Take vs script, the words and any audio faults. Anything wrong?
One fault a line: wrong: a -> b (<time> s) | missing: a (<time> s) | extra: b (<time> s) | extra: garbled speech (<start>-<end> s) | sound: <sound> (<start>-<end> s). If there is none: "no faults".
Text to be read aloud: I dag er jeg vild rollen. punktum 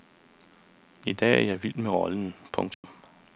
extra: med (1.8 s)
sound: dropout (2.7-2.8 s)